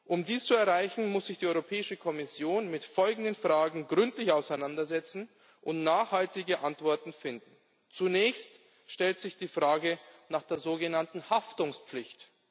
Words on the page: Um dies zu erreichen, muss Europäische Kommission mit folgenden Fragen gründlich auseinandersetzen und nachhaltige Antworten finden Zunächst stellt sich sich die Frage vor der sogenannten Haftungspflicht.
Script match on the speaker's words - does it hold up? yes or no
no